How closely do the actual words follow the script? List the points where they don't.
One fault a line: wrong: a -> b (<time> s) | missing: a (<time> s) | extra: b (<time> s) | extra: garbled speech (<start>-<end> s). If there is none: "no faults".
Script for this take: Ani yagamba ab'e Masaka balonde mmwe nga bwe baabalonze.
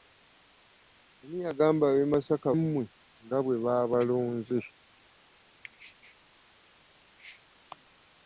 missing: balonde (2.5 s)